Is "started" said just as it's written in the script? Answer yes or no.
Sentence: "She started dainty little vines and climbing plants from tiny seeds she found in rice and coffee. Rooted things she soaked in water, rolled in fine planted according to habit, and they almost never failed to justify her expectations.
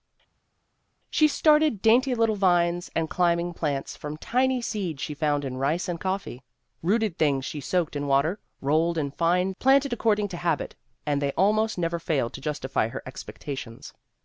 yes